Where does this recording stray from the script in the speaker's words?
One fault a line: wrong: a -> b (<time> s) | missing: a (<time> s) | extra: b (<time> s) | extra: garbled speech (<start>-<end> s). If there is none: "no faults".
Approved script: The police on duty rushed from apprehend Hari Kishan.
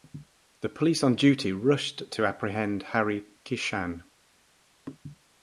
wrong: from -> to (2.1 s)